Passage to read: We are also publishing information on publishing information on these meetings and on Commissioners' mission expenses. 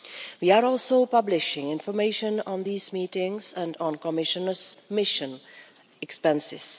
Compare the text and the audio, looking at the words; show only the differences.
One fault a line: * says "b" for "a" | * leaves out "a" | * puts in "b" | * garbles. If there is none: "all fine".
* leaves out "publishing information on"